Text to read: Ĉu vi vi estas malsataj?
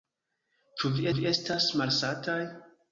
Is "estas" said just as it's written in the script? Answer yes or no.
yes